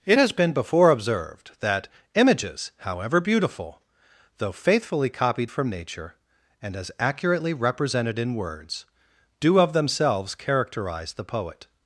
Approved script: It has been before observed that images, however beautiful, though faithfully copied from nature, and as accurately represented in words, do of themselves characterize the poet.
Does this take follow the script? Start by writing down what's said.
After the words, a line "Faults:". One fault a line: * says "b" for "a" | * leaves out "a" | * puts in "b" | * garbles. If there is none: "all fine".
It has been before observed that images, however beautiful, though faithfully copied from nature, and as accurately represented in words, do of themselves characterize the poet.
Faults:
all fine